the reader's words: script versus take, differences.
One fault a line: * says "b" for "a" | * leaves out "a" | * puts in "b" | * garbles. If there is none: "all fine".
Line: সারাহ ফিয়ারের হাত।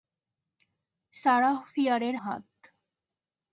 all fine